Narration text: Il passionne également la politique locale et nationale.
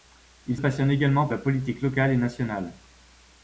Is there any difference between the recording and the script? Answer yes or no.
no